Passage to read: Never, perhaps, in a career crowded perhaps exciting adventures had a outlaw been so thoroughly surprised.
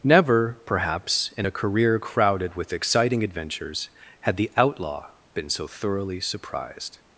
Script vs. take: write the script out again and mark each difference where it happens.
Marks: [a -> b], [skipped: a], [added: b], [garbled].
Never, perhaps, in a career crowded [perhaps -> with] exciting adventures had [a -> the] outlaw been so thoroughly surprised.